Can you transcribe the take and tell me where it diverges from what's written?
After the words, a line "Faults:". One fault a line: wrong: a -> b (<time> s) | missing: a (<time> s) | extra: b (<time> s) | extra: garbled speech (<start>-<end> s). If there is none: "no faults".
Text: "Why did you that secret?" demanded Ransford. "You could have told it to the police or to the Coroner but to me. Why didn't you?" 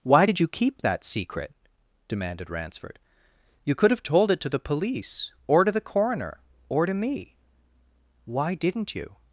"Why did you keep that secret?" demanded Ransford. "You could have told it to the police or to the Coroner or to me. Why didn't you?"
Faults:
extra: keep (0.5 s)
wrong: but -> or (6.7 s)